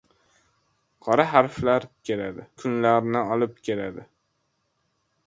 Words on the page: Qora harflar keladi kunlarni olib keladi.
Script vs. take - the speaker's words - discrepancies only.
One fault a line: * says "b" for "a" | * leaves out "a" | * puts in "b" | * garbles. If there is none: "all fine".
all fine